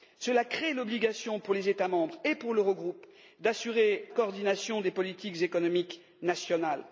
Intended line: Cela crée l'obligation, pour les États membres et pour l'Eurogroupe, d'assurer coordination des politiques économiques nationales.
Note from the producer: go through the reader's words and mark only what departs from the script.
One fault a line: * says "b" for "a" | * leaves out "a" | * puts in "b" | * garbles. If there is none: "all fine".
all fine